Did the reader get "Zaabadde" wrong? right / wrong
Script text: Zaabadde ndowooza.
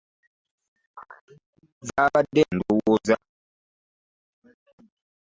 right